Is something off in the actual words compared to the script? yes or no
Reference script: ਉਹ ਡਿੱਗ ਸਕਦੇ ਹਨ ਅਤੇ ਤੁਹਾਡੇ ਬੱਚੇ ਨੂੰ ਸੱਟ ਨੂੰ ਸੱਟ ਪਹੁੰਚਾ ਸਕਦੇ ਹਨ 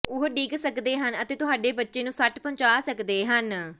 yes